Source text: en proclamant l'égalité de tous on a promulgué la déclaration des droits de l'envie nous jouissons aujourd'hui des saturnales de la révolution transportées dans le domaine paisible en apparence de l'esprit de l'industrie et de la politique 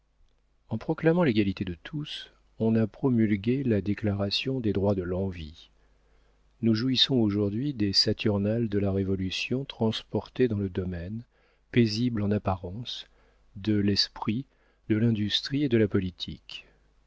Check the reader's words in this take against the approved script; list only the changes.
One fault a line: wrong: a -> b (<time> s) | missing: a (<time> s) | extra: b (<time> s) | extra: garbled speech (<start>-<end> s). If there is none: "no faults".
no faults